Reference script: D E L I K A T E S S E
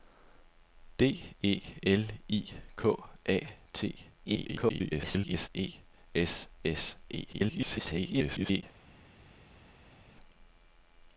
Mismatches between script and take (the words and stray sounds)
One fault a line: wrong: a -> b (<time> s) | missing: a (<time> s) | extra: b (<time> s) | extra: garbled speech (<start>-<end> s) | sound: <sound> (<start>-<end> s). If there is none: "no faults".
extra: garbled speech (4.3-5.5 s)
extra: garbled speech (7.3-8.6 s)